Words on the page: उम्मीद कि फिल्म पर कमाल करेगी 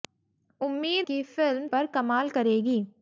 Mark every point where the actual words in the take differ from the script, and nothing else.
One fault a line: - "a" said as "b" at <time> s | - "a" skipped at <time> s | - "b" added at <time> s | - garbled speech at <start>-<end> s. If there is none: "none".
none